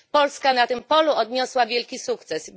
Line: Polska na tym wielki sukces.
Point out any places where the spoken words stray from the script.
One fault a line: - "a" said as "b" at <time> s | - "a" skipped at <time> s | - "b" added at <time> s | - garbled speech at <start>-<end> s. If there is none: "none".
- "polu odniosła" added at 0.8 s